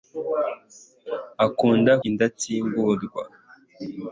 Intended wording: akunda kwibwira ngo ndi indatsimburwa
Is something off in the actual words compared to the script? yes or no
yes